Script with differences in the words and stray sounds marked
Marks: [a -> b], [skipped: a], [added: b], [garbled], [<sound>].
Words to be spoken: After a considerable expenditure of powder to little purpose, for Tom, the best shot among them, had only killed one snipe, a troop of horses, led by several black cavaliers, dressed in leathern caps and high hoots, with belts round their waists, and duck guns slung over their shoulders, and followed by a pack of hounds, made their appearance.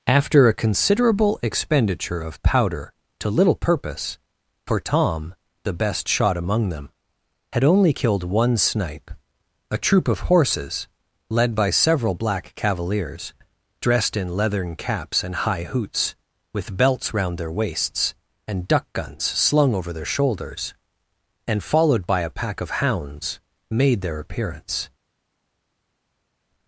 After a considerable expenditure of powder to little purpose, for Tom, the best shot among them, had only killed one snipe, a troop of horses, led by several black cavaliers, dressed in leathern caps and high hoots, with belts round their waists, and duck guns slung over their shoulders, and followed by a pack of hounds, made their appearance.